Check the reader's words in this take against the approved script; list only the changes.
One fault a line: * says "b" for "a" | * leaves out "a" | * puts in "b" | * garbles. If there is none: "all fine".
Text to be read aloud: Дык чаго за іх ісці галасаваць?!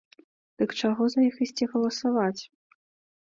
all fine